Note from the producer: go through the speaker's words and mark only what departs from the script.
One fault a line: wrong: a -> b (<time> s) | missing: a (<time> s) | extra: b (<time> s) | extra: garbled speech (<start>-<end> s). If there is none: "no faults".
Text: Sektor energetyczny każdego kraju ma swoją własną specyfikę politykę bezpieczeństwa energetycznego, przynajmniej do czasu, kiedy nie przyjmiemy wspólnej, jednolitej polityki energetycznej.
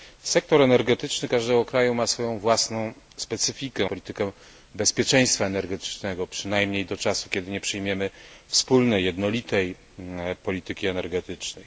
no faults